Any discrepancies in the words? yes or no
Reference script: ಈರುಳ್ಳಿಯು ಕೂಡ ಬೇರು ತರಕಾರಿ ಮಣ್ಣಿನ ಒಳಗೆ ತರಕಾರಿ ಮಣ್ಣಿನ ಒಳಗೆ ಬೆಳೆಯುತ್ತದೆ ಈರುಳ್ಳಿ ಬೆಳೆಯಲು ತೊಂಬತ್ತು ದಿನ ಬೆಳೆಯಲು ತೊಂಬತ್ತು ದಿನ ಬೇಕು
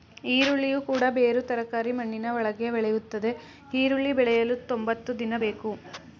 yes